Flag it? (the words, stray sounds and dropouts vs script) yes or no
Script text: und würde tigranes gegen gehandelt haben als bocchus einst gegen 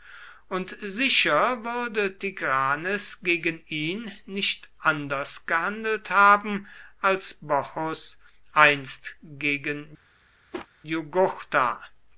yes